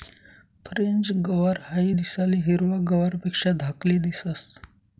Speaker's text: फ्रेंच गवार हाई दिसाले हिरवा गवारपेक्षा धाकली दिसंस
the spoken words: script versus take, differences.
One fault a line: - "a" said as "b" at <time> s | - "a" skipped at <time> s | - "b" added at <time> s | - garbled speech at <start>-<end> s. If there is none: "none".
none